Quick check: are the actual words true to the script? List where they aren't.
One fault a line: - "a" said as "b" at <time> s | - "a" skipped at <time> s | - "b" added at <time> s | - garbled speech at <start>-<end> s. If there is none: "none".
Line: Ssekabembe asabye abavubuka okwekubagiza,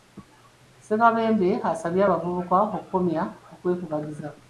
- "okukomya" added at 2.7 s